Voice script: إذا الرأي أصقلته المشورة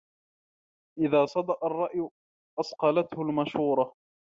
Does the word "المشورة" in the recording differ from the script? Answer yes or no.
no